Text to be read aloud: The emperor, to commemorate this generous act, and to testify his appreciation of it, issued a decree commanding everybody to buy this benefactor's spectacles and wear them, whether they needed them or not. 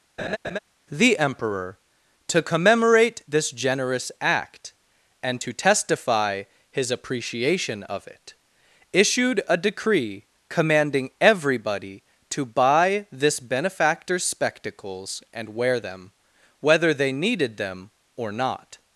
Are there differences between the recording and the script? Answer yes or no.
no